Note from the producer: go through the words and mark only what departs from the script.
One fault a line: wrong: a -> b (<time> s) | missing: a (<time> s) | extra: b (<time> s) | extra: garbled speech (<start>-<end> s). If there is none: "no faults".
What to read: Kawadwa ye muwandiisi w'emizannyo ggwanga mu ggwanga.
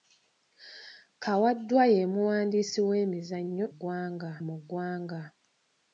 no faults